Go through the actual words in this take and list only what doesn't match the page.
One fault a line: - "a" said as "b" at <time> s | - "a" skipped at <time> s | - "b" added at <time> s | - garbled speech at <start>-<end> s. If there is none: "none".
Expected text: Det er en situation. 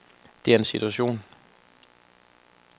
none